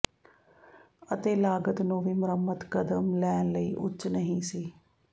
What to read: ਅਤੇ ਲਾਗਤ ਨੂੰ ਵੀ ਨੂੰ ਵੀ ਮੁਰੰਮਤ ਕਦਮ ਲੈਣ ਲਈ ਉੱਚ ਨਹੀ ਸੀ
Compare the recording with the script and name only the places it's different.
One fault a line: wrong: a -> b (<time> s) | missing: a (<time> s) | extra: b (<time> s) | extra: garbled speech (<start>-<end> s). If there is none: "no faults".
missing: ਨੂੰ ਵੀ (2.1 s)